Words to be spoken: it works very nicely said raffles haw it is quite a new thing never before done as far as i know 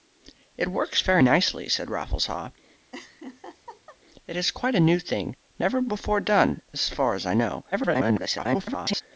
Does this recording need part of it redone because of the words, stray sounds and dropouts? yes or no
yes